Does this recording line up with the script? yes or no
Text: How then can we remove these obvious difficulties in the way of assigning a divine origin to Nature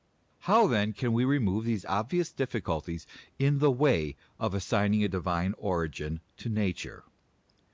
yes